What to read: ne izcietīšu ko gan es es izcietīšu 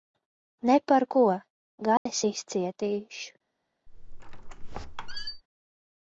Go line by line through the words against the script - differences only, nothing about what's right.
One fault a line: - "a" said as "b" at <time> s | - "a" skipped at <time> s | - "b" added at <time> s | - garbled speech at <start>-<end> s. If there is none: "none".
- "izcietīšu" said as "par" at 0.9 s
- "es" skipped at 2.2 s